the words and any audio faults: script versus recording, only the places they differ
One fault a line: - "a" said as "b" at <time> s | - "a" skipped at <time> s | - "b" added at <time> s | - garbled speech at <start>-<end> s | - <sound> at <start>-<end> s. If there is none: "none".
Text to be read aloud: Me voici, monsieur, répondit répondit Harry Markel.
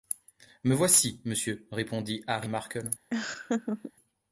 - "répondit" skipped at 2.2 s
- laugh at 3.1-3.9 s